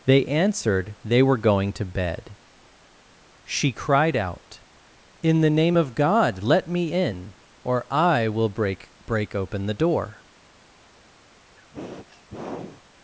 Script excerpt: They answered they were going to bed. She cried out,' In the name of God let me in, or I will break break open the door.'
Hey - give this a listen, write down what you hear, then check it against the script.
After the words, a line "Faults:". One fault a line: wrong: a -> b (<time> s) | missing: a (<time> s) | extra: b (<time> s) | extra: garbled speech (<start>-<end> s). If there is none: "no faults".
They answered they were going to bed. She cried out,' In the name of God let me in, or I will break break open the door.'
Faults:
no faults